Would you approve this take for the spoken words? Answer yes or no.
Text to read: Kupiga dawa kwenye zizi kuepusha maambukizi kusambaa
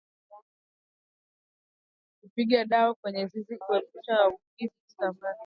yes